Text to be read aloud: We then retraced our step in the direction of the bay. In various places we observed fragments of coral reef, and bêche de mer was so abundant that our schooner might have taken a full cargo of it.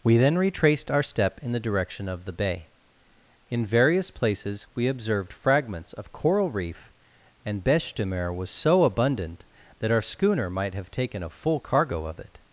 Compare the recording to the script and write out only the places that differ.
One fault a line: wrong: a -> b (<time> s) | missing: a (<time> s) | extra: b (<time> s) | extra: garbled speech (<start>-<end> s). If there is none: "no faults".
no faults